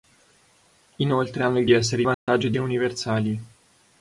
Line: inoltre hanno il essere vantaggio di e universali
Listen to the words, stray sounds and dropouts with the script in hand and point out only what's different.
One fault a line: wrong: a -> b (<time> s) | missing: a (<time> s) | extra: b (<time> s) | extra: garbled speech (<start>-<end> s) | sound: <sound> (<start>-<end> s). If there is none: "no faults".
sound: dropout (2.1-2.3 s)